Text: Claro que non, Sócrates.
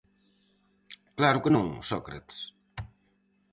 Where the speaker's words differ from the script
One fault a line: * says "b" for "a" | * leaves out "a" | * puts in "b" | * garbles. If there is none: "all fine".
all fine